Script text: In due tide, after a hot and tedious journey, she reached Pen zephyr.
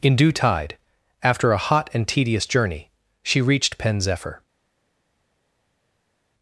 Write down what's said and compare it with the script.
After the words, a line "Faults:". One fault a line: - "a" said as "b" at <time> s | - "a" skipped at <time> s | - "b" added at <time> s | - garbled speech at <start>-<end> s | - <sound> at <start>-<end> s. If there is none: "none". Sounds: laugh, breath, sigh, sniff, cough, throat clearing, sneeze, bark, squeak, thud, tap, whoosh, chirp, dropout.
In due tide, after a hot and tedious journey, she reached Pen zephyr.
Faults:
none